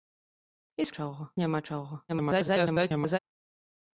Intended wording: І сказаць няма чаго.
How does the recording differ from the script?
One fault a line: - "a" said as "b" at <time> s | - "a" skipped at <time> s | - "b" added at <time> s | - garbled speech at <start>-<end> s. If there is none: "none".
- "сказаць" said as "чаго" at 1.0 s
- garbled speech at 2.1-3.2 s